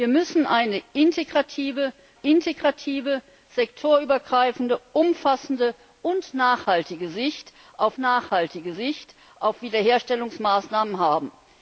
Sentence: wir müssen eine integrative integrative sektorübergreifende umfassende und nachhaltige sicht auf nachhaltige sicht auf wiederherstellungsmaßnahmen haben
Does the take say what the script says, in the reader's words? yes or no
yes